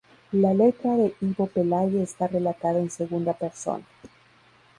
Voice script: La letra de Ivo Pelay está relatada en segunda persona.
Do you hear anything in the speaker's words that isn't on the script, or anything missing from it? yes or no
no